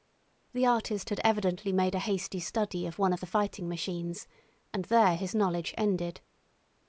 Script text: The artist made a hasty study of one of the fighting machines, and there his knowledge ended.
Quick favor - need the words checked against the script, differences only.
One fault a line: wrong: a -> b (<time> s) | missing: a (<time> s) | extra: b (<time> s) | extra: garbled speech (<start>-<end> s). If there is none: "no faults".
extra: had evidently (1.1 s)